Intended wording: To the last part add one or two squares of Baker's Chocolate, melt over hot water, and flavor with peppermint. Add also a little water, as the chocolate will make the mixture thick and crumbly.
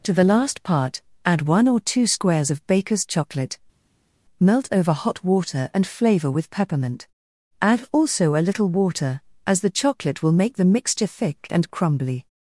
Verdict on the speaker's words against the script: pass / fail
pass